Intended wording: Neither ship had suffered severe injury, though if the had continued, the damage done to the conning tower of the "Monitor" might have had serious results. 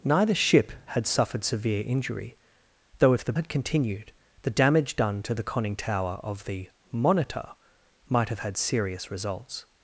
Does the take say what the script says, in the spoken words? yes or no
yes